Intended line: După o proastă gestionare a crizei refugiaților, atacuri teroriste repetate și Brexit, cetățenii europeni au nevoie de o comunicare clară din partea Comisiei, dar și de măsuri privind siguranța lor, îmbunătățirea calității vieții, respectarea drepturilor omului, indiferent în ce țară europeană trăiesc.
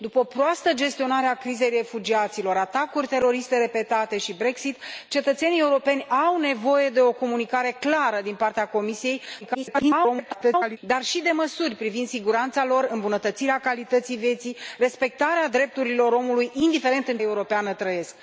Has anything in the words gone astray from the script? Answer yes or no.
yes